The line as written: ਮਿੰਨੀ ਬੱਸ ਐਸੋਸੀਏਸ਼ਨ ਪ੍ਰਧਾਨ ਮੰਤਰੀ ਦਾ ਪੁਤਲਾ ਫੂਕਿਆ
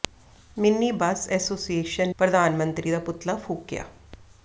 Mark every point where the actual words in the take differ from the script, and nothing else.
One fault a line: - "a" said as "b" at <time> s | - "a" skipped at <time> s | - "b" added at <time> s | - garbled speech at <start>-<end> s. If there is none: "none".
none